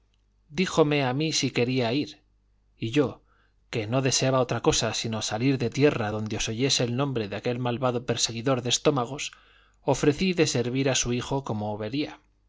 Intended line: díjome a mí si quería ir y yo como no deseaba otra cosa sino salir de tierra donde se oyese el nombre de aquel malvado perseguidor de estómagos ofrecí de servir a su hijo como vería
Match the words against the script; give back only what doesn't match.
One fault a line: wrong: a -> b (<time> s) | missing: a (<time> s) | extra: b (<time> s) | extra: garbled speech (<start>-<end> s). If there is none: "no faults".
wrong: como -> que (3.7 s)